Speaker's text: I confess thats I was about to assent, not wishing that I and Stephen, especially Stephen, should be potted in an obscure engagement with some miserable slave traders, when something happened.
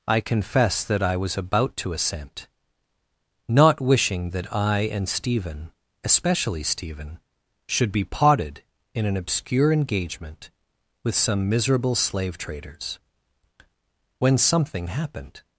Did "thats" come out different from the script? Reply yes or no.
yes